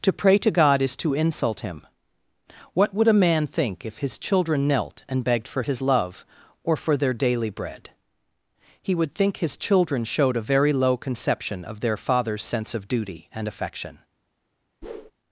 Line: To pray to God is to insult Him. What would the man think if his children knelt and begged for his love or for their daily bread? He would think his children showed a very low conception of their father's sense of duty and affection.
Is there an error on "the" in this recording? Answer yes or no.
yes